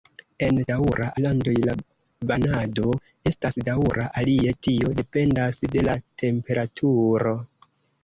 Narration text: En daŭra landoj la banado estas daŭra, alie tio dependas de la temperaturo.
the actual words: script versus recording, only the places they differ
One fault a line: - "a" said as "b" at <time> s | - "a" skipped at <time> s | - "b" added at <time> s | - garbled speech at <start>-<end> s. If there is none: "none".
none